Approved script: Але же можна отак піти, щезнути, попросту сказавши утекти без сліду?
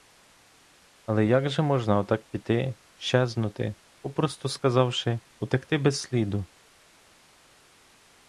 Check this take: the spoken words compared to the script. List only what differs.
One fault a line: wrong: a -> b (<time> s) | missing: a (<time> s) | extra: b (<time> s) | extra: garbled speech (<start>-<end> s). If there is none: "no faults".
extra: як (1.2 s)